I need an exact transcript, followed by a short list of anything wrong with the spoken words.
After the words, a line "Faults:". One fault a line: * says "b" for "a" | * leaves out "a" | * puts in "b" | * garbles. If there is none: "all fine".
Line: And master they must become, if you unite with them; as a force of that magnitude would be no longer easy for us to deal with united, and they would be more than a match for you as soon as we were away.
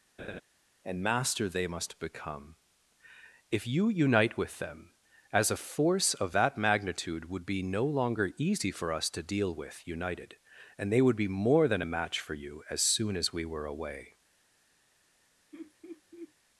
And master they must become, if you unite with them; as a force of that magnitude would be no longer easy for us to deal with united, and they would be more than a match for you as soon as we were away.
Faults:
all fine